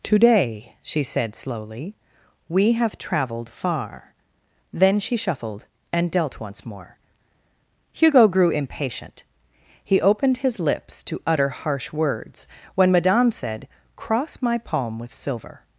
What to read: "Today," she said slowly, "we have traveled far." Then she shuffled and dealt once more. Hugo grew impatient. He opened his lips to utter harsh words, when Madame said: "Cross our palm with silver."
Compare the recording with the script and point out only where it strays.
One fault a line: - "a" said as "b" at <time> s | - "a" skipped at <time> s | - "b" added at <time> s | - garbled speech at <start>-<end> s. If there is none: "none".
- "our" said as "my" at 14.4 s